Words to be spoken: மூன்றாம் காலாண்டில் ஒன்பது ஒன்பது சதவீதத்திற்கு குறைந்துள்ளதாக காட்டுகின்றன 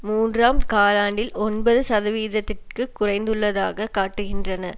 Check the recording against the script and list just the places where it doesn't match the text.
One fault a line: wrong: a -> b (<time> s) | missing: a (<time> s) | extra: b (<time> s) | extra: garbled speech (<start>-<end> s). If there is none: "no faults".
missing: ஒன்பது (1.8 s)